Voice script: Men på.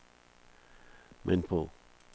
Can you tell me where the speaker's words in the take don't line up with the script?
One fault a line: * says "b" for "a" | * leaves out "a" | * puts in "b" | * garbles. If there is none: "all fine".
all fine